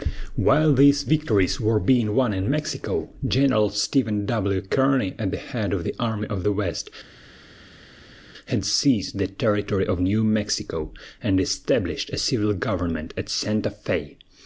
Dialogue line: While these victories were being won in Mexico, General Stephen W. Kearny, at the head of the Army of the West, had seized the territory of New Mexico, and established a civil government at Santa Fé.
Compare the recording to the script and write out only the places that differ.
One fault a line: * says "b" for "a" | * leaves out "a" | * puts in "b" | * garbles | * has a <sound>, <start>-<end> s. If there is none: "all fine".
all fine